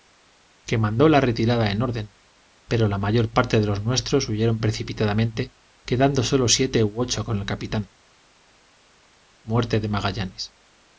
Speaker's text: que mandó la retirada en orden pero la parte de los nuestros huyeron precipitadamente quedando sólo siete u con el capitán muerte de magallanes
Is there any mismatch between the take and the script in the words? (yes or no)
yes